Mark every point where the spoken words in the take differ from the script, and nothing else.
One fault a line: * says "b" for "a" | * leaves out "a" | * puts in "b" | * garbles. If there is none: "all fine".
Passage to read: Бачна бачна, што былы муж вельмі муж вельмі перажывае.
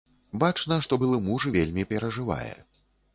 * leaves out "бачна"
* leaves out "муж вельмі"